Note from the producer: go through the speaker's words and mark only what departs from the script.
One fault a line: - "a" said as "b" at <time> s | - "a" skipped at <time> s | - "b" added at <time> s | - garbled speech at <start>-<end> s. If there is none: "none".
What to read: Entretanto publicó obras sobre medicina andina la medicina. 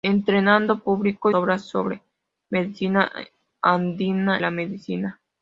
none